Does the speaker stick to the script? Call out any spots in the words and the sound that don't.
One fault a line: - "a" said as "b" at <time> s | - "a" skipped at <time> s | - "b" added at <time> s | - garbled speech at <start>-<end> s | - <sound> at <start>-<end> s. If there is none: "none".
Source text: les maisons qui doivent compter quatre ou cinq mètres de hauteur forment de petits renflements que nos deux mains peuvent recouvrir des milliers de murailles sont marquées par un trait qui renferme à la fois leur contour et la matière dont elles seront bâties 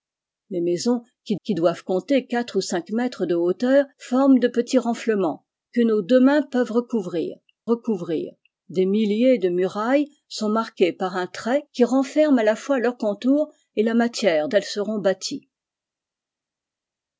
- "qui" added at 1.4 s
- "recouvrir" added at 7.7 s
- "dont" skipped at 14.5 s